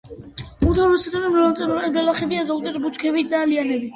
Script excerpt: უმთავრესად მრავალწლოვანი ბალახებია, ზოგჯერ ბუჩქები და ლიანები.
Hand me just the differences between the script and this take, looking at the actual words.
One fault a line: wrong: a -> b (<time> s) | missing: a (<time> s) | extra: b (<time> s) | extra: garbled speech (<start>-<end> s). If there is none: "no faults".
no faults